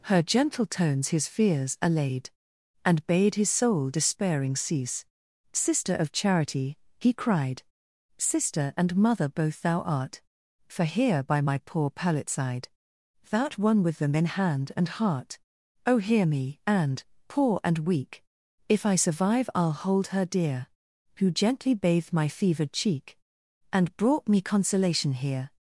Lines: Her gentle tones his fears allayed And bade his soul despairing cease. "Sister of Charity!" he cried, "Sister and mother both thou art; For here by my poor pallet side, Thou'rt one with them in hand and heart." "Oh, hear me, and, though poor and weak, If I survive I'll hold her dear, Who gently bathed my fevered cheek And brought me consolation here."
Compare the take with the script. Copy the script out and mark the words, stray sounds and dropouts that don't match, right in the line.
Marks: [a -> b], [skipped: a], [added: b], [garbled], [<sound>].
Her gentle tones his fears allayed And bade his soul despairing cease. "Sister of Charity!" he cried, "Sister and mother both thou art; For here by my poor pallet side, Thou'rt one with them in hand and heart." "Oh, hear me, and, [skipped: though] poor and weak, If I survive I'll hold her dear, Who gently bathed my fevered cheek And brought me consolation here."